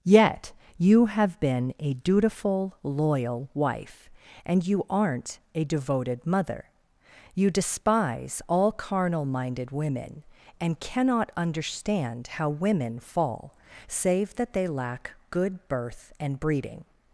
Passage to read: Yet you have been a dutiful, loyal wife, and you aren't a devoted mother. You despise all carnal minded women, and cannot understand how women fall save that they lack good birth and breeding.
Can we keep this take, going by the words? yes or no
yes